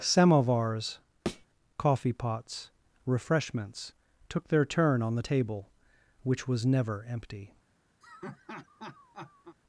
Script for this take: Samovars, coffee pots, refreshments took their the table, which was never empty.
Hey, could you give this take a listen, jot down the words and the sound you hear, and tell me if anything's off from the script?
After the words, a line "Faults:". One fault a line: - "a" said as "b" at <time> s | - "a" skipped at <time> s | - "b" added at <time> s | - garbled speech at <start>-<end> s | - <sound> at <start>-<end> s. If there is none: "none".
Samovars, coffee pots, refreshments took their turn on the table, which was never empty.
Faults:
- thud at 1.3-1.5 s
- "turn on" added at 4.6 s
- laugh at 8.0-9.6 s